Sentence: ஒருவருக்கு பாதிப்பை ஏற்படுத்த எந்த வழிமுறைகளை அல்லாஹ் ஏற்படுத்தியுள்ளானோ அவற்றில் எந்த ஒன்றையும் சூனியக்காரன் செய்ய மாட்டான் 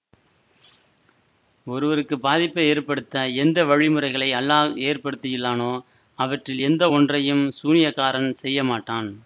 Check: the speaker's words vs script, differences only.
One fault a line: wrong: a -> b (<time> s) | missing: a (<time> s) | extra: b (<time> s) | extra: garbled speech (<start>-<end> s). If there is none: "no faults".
no faults